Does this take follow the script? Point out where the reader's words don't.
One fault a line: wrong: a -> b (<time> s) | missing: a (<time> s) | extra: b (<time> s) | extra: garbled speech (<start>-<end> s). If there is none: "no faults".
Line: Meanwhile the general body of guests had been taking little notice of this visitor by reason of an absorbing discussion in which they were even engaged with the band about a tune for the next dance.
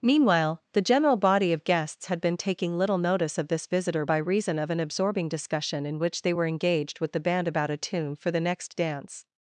missing: even (6.5 s)